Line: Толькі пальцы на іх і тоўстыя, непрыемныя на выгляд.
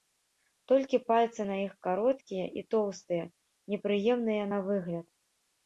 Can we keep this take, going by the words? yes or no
no